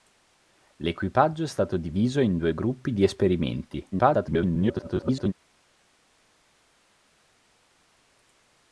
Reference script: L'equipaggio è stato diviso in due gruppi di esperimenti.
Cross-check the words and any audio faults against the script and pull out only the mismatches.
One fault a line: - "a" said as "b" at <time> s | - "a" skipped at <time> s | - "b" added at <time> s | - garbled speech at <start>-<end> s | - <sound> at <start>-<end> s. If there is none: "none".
- garbled speech at 3.9-5.3 s